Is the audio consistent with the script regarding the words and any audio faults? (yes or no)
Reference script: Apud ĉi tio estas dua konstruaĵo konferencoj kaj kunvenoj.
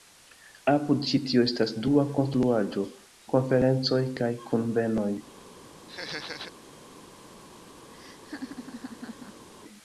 no